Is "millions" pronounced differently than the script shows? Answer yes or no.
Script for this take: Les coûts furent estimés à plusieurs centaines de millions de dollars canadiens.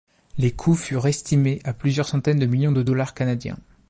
no